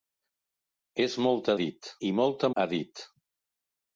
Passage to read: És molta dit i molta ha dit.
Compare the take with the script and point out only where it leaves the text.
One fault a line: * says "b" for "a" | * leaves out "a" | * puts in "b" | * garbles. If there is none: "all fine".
all fine